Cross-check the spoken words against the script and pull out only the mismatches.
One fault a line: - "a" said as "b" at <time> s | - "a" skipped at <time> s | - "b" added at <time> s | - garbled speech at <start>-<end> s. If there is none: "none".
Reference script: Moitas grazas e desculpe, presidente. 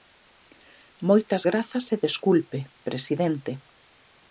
none